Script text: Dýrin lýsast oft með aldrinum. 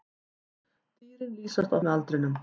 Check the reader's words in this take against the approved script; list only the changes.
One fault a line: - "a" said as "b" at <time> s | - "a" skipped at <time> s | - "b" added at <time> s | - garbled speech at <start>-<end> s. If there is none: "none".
- "oft" skipped at 1.8 s